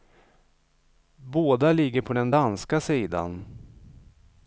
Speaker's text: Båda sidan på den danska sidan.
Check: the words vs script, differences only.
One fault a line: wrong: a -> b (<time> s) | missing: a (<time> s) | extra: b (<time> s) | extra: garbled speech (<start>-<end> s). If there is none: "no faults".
wrong: sidan -> ligger (1.7 s)